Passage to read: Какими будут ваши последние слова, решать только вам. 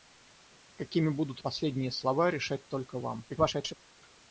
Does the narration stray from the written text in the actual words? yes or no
yes